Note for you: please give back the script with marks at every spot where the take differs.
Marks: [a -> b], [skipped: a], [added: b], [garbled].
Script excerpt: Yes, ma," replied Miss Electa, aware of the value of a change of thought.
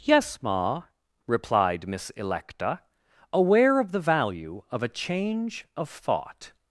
Yes, ma," replied Miss Electa, aware of the value of a change of thought.